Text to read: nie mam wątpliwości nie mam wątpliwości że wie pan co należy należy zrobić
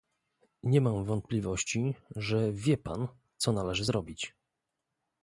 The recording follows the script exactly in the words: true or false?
false